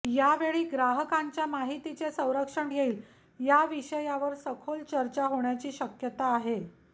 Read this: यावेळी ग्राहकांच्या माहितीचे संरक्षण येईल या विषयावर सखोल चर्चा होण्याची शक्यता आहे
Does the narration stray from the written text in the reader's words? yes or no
no